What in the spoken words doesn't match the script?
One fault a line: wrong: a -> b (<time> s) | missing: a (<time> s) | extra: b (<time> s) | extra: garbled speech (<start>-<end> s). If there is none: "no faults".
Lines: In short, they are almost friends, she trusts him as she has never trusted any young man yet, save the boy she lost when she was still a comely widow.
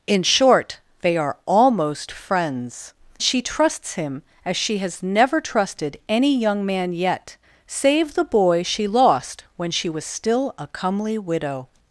no faults